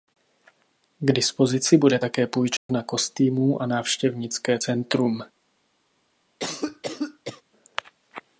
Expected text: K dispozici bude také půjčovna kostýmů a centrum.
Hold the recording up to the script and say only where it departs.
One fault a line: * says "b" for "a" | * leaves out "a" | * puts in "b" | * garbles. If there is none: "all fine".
* puts in "návštěvnické"